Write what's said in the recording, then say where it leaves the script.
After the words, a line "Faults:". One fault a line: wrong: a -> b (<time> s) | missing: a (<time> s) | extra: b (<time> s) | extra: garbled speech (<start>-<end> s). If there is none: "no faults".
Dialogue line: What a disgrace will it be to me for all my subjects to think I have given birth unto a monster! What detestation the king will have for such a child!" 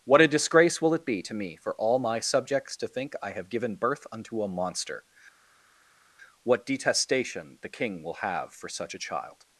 What a disgrace will it be to me for all my subjects to think I have given birth unto a monster! What detestation the king will have for such a child!"
Faults:
no faults